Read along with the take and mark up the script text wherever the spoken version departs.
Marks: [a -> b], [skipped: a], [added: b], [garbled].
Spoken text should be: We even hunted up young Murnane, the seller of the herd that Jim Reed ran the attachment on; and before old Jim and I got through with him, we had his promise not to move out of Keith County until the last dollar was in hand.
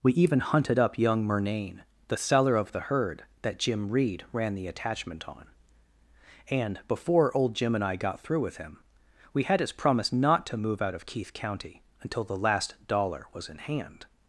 We even hunted up young Murnane, the seller of the herd that Jim Reed ran the attachment on; and before old Jim and I got through with him, we had his promise not to move out of Keith County until the last dollar was in hand.